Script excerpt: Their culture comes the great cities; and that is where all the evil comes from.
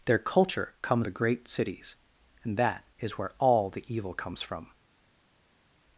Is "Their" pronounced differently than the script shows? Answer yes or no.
no